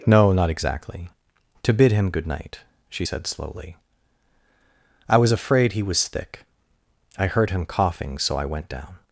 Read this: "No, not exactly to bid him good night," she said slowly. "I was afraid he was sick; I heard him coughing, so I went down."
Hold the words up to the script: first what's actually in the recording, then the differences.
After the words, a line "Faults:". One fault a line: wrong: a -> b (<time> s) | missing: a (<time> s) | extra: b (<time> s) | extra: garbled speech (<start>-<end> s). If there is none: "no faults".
"No, not exactly to bid him good night," she said slowly. "I was afraid he was thick; I heard him coughing, so I went down."
Faults:
wrong: sick -> thick (6.1 s)